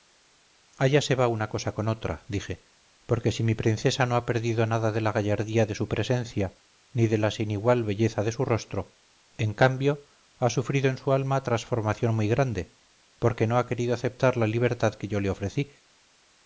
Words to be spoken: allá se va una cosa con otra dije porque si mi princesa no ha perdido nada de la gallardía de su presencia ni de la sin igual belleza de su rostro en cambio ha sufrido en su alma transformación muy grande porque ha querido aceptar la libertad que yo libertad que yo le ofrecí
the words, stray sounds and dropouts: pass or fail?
fail